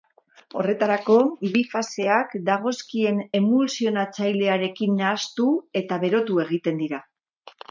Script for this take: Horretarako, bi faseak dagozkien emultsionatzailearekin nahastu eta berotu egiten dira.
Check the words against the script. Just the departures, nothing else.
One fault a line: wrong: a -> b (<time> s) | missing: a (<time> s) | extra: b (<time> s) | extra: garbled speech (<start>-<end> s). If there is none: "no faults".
no faults